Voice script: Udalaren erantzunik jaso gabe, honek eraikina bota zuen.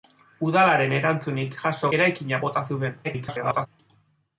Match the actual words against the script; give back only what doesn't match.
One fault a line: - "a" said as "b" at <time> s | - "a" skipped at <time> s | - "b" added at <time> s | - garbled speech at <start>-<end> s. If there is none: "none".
- "gabe honek" skipped at 1.9 s
- garbled speech at 3.0-3.7 s